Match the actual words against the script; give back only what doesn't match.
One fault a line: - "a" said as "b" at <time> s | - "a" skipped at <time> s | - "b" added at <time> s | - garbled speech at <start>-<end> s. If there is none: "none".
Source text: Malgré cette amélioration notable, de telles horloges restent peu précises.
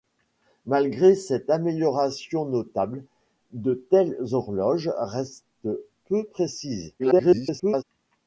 - garbled speech at 7.0-7.8 s